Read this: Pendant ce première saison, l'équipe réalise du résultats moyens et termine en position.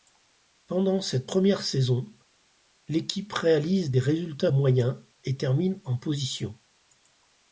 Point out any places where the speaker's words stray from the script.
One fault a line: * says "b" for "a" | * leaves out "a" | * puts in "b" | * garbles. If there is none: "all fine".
* says "cette" for "ce"
* says "des" for "du"